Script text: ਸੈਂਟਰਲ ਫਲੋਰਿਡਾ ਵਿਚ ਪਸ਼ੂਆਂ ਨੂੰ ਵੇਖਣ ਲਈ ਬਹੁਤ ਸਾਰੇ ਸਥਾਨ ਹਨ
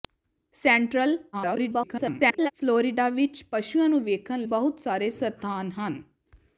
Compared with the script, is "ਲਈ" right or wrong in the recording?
wrong